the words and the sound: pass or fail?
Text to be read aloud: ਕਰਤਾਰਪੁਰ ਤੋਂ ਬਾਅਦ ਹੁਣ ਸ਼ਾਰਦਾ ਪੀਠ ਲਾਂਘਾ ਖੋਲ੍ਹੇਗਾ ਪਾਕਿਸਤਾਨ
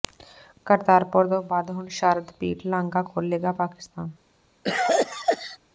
fail